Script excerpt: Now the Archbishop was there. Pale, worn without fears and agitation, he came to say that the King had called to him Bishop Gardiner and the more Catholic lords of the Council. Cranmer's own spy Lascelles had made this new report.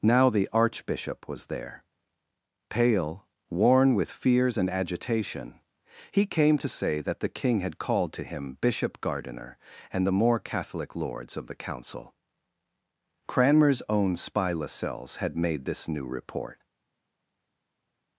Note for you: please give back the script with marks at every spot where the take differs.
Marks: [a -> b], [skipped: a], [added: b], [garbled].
Now the Archbishop was there. Pale, worn [without -> with] fears and agitation, he came to say that the King had called to him Bishop Gardiner and the more Catholic lords of the Council. Cranmer's own spy Lascelles had made this new report.